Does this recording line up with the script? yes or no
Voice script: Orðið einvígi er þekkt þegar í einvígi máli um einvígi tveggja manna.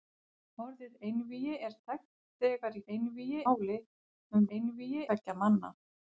yes